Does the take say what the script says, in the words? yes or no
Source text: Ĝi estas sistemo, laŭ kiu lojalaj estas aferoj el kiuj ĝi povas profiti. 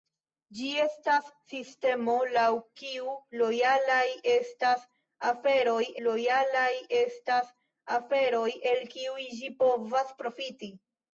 no